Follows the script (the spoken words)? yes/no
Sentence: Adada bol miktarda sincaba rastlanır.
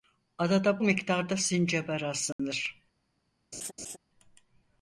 no